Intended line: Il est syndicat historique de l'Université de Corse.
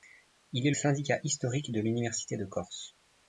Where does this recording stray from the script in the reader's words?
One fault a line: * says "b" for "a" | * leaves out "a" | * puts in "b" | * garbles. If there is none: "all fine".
all fine